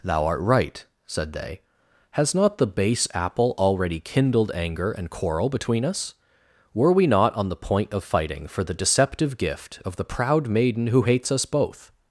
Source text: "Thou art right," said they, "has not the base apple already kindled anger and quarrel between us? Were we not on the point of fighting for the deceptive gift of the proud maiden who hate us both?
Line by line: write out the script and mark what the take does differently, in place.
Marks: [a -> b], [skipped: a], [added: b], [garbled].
"Thou art right," said they, "has not the base apple already kindled anger and quarrel between us? Were we not on the point of fighting for the deceptive gift of the proud maiden who [hate -> hates] us both?